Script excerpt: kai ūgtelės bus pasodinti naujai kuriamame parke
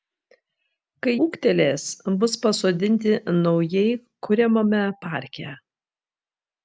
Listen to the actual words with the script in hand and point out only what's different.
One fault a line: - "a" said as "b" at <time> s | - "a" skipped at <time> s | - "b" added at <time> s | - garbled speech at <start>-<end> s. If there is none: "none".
none